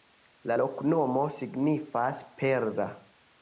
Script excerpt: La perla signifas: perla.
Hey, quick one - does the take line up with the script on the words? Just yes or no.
no